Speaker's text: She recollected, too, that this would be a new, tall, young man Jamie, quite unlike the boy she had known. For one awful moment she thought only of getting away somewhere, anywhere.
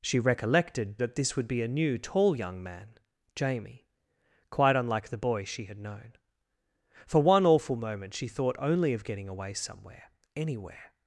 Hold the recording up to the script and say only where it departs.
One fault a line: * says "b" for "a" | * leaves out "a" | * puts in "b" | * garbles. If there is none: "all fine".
* leaves out "too"